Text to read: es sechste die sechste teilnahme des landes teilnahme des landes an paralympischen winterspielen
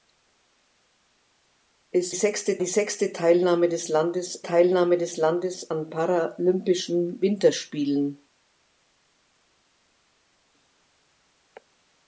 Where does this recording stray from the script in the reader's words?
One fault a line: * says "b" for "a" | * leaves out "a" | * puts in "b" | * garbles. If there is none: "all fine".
all fine